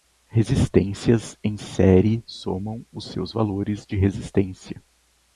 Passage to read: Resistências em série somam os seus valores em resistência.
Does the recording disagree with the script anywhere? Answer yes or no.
yes